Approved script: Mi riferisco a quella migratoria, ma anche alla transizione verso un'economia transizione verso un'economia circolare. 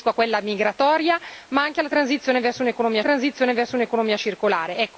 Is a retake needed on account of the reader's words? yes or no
no